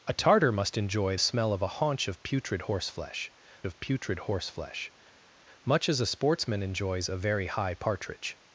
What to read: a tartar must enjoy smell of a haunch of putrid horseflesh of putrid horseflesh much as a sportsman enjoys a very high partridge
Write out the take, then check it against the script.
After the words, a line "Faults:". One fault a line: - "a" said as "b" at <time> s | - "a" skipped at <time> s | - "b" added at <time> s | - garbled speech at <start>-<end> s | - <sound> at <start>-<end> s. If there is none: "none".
a tartar must enjoy smell of a haunch of putrid horseflesh of putrid horseflesh much as a sportsman enjoys a very high partridge
Faults:
none